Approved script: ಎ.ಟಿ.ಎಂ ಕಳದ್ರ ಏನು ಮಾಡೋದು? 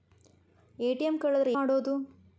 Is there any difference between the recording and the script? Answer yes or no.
yes